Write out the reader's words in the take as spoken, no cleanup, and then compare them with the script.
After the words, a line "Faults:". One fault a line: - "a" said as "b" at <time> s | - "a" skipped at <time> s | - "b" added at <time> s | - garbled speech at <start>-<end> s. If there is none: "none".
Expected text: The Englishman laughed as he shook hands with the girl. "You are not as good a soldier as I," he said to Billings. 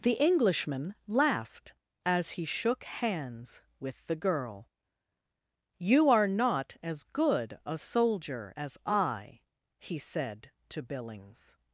The Englishman laughed as he shook hands with the girl. "You are not as good a soldier as I," he said to Billings.
Faults:
none